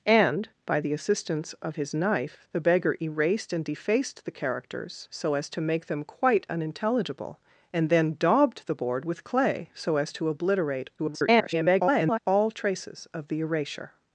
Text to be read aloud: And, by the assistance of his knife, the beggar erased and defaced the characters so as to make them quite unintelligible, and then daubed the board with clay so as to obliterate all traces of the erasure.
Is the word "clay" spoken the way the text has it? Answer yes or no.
yes